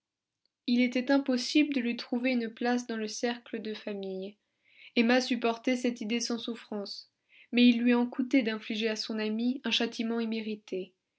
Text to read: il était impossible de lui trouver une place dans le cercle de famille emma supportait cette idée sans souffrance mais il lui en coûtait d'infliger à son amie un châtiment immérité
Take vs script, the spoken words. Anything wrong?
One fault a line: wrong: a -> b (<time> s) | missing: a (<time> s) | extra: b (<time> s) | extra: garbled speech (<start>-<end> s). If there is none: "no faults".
no faults